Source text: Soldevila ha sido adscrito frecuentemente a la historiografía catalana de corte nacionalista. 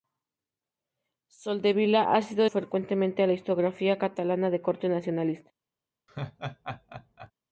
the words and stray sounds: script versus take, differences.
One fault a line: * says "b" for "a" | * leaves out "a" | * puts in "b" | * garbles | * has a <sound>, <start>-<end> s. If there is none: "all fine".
* leaves out "adscrito"
* has a laugh, 6.1-7.3 s